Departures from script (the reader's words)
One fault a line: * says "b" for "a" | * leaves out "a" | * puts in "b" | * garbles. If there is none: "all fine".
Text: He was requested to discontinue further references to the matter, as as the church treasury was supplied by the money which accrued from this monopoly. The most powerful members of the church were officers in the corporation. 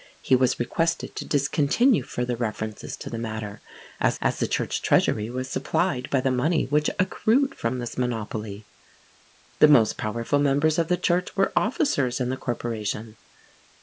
all fine